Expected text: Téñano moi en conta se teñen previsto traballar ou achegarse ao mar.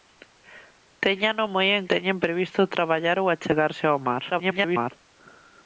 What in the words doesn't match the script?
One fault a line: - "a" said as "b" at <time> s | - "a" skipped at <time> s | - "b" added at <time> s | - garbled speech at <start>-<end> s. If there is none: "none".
- "conta se" skipped at 1.9 s
- garbled speech at 4.3-4.9 s